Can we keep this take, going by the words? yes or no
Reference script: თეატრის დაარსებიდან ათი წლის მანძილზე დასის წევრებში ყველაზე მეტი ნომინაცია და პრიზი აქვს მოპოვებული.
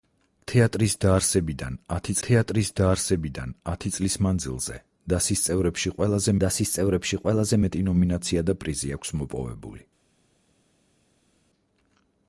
no